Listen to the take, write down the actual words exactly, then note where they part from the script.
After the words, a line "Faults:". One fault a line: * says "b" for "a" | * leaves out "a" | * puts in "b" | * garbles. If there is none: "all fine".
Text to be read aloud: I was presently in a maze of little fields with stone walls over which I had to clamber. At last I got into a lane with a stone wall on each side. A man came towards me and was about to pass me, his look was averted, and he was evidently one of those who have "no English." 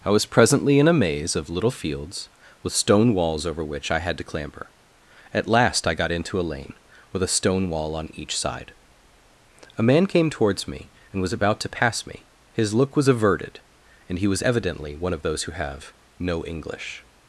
I was presently in a maze of little fields with stone walls over which I had to clamber. At last I got into a lane with a stone wall on each side. A man came towards me and was about to pass me, his look was averted, and he was evidently one of those who have "no English."
Faults:
all fine